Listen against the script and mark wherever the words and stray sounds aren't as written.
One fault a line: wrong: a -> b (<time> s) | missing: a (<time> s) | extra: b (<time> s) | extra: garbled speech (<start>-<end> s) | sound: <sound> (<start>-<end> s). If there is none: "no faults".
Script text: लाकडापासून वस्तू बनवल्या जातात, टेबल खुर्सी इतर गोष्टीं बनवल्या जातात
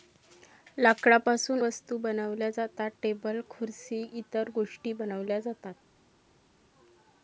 no faults